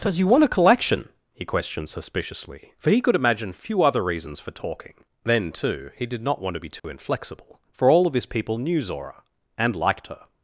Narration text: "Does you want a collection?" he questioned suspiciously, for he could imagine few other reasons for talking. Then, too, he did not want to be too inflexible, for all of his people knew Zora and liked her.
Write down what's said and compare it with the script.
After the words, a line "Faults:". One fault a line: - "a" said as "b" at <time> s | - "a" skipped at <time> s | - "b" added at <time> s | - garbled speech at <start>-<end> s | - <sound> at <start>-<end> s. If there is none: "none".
"Does you want a collection?" he questioned suspiciously, for he could imagine few other reasons for talking. Then, too, he did not want to be too inflexible, for all of his people knew Zora and liked her.
Faults:
- dropout at 6.8-6.8 s